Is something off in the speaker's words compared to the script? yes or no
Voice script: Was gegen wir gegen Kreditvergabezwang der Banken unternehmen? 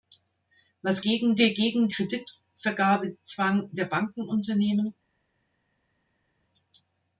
no